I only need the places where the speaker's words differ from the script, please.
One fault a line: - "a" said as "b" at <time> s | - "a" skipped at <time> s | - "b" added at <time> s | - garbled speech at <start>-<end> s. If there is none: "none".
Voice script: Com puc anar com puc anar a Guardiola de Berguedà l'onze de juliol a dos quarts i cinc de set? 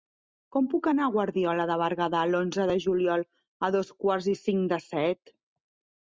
- "com puc anar" skipped at 1.1 s